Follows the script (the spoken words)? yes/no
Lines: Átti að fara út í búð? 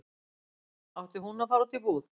no